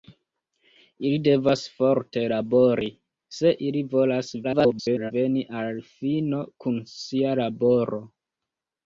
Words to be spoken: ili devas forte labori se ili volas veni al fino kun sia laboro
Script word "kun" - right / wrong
right